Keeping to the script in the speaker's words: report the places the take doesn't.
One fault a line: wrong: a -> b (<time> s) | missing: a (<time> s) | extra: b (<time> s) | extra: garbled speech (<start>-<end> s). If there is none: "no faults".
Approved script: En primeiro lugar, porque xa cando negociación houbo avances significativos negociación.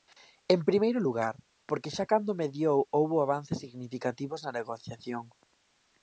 wrong: negociación -> mediou (2.4 s)
extra: na (4.4 s)